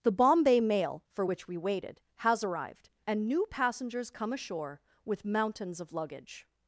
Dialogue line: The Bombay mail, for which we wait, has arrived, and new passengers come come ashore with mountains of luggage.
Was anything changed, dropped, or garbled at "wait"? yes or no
yes